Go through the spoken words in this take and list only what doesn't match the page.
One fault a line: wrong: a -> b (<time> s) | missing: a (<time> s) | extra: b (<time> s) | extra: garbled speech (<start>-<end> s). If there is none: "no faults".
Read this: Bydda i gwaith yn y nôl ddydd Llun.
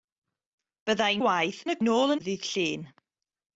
no faults